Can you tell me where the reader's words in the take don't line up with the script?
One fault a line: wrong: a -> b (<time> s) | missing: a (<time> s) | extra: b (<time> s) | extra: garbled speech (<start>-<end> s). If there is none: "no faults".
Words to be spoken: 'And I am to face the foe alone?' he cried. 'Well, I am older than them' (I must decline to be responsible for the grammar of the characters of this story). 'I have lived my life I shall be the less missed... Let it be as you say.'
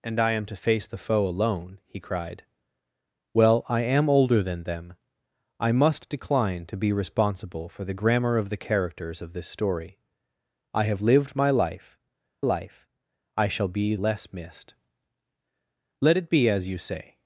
extra: life (12.4 s)
missing: the (14.0 s)